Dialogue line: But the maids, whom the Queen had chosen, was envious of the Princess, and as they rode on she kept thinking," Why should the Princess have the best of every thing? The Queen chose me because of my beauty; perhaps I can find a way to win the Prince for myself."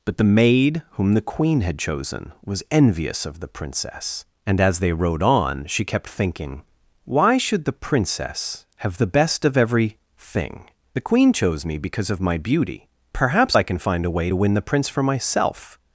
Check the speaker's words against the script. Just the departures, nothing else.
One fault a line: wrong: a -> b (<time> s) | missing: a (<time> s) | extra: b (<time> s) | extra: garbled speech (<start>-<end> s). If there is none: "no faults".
wrong: maids -> maid (0.2 s)